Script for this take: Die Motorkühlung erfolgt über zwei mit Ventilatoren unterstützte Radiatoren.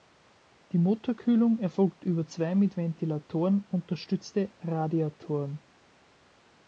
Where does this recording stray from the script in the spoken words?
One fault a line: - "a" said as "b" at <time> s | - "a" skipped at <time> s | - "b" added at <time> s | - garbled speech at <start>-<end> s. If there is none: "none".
none